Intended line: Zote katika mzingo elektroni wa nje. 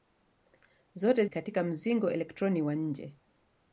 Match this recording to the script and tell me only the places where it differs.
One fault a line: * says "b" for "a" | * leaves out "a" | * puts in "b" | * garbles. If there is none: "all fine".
all fine